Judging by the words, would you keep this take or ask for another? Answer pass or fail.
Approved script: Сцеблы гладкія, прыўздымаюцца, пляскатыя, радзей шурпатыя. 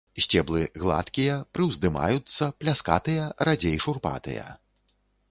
pass